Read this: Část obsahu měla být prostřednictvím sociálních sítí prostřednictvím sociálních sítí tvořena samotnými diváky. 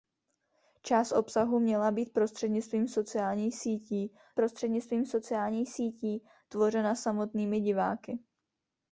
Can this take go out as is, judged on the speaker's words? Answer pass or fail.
pass